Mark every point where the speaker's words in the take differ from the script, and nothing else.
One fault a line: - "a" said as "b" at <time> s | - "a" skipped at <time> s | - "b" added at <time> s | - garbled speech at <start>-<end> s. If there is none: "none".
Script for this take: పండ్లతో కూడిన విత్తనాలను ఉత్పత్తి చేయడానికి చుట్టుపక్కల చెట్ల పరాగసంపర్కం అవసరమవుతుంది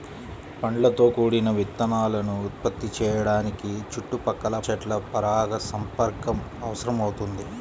none